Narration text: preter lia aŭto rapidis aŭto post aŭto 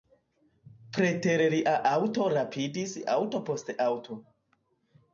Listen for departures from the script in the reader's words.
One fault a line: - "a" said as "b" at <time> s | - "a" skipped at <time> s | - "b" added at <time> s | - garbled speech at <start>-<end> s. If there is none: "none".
none